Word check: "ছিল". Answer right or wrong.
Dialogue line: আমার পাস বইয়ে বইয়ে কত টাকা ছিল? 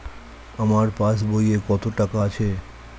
wrong